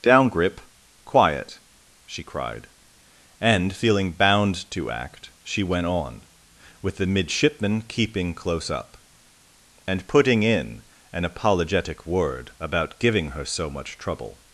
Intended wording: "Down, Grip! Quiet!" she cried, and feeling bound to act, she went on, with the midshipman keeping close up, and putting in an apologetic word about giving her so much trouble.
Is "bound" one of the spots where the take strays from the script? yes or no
no